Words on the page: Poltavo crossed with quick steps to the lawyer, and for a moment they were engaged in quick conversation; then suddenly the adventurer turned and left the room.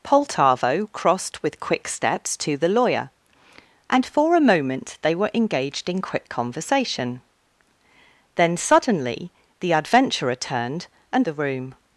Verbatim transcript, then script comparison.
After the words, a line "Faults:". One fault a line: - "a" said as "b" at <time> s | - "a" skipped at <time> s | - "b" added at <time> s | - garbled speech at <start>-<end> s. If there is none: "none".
Poltavo crossed with quick steps to the lawyer, and for a moment they were engaged in quick conversation; then suddenly the adventurer turned and the room.
Faults:
- "left" skipped at 11.3 s